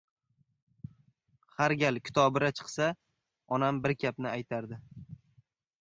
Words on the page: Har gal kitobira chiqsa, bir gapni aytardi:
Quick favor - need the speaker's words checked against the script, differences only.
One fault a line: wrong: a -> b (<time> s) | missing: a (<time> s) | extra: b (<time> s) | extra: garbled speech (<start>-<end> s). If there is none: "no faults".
extra: onam (3.6 s)